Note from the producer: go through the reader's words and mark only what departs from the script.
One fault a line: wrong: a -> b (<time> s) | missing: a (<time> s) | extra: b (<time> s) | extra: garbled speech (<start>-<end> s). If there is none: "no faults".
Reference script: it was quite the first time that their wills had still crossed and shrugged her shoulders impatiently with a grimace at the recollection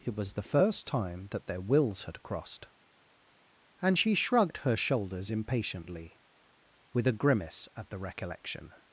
missing: quite (0.3 s)
missing: still (2.2 s)
extra: she (4.0 s)